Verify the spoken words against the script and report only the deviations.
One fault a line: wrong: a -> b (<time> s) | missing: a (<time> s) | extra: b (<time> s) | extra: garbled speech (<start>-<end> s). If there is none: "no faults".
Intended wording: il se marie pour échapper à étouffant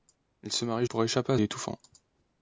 no faults